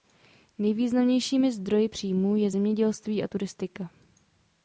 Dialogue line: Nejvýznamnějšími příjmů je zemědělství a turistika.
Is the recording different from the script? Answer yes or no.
yes